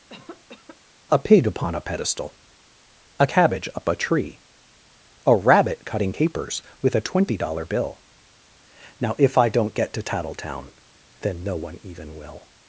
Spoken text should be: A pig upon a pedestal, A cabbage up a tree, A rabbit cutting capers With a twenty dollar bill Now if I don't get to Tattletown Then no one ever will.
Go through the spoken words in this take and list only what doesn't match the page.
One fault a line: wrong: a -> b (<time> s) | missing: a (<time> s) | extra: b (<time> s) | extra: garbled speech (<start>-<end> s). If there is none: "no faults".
wrong: ever -> even (11.8 s)